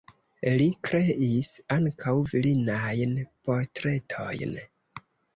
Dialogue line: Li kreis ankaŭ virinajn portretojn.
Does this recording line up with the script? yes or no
yes